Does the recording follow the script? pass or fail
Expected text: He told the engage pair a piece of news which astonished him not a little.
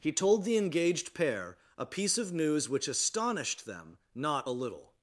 fail